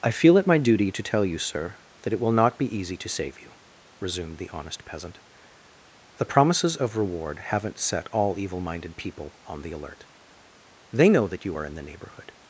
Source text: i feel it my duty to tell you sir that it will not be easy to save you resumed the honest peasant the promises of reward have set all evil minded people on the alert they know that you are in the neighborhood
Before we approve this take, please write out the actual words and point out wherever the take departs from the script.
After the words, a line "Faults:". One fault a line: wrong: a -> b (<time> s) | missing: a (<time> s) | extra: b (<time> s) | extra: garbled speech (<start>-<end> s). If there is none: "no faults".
i feel it my duty to tell you sir that it will not be easy to save you resumed the honest peasant the promises of reward haven't set all evil minded people on the alert they know that you are in the neighborhood
Faults:
wrong: have -> haven't (7.4 s)